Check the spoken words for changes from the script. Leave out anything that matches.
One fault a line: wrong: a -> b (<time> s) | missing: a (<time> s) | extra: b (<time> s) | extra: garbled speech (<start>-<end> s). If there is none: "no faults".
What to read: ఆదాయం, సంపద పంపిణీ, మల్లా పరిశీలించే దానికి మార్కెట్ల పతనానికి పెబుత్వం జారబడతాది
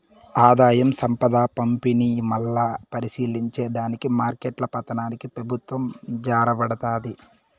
no faults